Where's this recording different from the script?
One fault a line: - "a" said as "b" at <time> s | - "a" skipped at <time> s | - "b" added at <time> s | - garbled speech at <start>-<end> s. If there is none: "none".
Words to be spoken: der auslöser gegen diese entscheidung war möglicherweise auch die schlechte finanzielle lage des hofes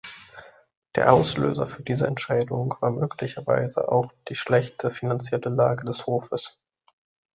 - "gegen" said as "für" at 1.7 s